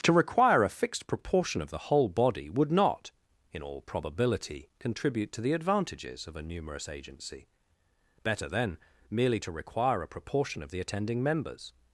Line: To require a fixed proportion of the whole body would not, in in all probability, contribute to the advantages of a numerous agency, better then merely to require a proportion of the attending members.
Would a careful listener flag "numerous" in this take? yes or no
no